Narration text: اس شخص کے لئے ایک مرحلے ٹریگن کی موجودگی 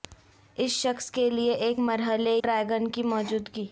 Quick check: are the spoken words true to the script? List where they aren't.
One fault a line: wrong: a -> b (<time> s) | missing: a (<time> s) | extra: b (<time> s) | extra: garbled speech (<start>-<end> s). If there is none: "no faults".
no faults